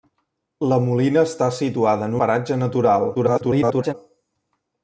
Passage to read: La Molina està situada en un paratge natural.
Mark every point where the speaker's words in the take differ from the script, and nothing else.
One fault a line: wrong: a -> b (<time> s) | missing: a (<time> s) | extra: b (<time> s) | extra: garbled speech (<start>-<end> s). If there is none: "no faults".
missing: un (2.2 s)
extra: garbled speech (3.1-3.9 s)